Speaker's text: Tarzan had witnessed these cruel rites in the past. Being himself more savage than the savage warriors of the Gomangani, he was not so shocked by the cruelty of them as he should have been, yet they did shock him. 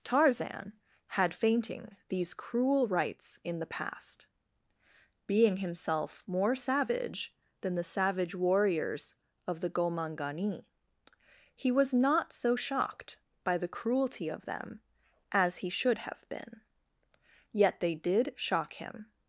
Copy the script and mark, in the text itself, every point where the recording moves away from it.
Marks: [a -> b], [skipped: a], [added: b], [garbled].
Tarzan had [witnessed -> fainting] these cruel rites in the past. Being himself more savage than the savage warriors of the Gomangani, he was not so shocked by the cruelty of them as he should have been, yet they did shock him.